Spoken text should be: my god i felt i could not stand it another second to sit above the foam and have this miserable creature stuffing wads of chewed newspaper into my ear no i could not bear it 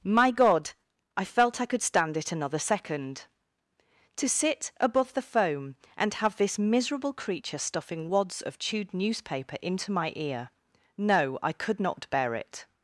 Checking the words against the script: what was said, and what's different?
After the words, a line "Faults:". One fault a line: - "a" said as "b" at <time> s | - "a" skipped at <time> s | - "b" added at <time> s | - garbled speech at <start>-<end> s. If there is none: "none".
my god i felt i could stand it another second to sit above the foam and have this miserable creature stuffing wads of chewed newspaper into my ear no i could not bear it
Faults:
- "not" skipped at 1.8 s